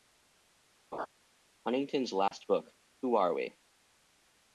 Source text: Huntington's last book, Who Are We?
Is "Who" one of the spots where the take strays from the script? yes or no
no